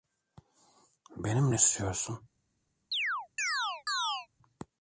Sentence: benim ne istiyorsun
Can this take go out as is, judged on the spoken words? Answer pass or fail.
pass